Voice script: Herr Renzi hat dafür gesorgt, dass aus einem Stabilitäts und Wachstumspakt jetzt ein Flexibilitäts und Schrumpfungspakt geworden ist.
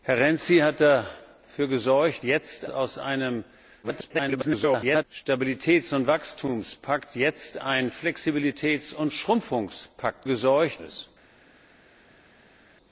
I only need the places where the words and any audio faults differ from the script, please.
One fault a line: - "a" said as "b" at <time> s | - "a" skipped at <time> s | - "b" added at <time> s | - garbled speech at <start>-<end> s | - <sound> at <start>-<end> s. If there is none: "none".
- "dass" said as "jetzt" at 2.2 s
- garbled speech at 3.8-5.0 s
- "geworden" said as "gesorgt" at 10.2 s